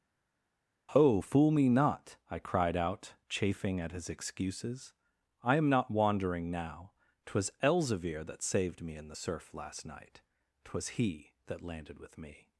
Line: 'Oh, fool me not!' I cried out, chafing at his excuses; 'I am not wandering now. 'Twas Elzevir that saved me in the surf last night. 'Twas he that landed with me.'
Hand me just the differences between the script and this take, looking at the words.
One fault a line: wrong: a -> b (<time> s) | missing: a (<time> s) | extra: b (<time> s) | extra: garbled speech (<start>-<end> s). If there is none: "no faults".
no faults